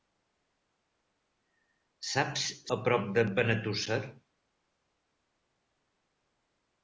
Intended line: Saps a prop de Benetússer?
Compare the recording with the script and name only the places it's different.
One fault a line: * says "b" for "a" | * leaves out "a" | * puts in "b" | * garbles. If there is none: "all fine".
all fine